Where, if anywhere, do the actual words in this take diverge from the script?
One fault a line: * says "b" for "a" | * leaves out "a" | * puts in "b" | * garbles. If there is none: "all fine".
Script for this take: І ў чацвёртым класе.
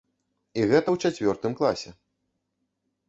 * puts in "гэта"